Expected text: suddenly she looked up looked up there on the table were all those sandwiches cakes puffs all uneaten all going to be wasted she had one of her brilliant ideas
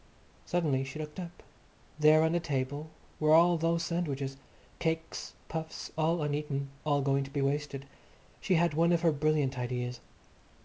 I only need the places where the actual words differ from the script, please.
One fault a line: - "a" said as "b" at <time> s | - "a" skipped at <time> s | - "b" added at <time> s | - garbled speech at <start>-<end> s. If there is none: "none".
- "looked up" skipped at 1.4 s